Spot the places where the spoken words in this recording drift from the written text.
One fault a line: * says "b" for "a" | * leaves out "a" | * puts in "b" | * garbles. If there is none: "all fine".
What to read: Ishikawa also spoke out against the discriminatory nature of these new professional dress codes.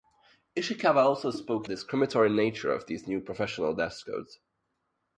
* leaves out "out against"